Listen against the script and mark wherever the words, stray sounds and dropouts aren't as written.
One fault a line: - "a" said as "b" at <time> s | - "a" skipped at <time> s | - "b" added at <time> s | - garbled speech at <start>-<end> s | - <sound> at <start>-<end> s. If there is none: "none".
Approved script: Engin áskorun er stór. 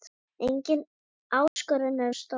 - dropout at 1.5-1.6 s